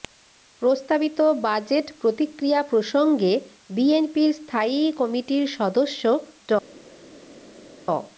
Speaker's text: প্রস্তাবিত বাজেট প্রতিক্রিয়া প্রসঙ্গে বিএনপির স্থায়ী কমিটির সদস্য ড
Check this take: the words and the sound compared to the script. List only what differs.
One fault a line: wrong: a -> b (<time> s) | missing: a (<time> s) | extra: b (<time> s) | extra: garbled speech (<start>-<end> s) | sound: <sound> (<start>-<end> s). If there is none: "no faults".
no faults